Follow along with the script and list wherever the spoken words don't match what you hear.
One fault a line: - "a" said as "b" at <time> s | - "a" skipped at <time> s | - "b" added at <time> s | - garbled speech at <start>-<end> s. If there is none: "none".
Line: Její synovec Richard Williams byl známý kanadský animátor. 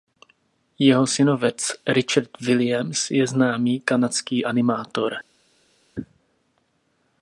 - "Její" said as "Jeho" at 0.8 s
- "byl" said as "je" at 3.1 s